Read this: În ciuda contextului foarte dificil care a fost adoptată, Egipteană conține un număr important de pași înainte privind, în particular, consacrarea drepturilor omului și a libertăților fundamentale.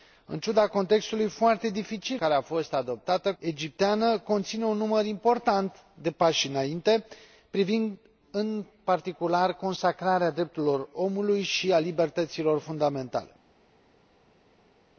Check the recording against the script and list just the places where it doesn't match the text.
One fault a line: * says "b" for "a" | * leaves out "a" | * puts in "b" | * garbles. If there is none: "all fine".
all fine